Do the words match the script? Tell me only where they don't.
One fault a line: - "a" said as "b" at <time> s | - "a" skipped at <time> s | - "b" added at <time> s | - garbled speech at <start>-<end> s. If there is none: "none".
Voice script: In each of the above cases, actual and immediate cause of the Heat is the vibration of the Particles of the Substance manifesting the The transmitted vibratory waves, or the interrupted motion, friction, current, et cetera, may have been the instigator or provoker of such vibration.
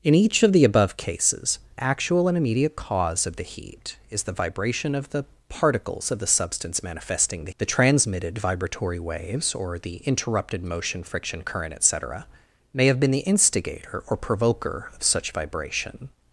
none